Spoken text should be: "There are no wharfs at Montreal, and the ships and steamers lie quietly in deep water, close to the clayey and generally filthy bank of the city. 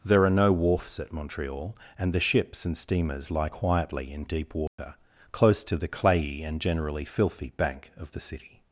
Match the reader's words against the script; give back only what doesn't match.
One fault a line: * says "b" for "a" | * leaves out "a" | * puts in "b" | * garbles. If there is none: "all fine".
all fine